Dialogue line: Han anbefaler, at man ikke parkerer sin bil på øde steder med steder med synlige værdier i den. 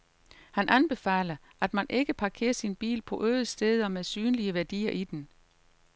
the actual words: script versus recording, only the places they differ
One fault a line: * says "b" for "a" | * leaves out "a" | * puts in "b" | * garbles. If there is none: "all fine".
* leaves out "steder med"